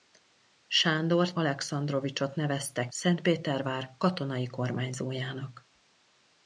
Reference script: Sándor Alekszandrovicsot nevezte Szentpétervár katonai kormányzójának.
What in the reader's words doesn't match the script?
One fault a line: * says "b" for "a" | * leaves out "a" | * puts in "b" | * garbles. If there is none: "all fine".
all fine